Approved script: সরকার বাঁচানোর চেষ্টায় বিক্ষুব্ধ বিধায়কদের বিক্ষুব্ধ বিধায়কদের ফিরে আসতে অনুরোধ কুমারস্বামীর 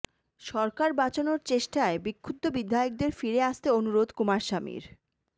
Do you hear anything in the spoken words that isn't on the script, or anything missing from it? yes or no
yes